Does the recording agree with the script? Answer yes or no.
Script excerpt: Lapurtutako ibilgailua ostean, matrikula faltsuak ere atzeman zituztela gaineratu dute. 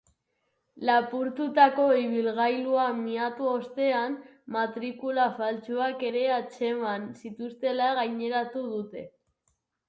no